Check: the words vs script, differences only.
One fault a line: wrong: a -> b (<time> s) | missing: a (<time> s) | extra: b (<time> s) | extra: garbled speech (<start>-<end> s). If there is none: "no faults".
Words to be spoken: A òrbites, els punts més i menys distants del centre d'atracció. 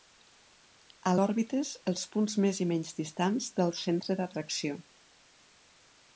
no faults